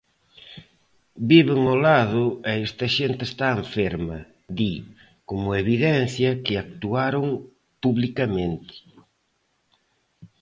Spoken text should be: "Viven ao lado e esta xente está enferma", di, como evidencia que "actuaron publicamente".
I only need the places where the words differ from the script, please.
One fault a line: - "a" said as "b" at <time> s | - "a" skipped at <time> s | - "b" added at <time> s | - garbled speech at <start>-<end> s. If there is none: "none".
none